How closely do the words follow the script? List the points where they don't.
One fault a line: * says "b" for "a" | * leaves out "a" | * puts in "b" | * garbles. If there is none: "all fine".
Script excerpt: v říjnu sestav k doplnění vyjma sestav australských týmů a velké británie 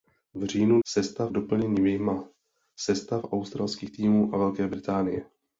all fine